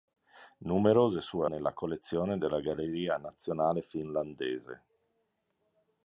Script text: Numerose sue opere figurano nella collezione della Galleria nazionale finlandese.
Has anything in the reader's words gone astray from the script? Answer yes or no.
yes